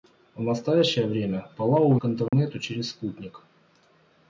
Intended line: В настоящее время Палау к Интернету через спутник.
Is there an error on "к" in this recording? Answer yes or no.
no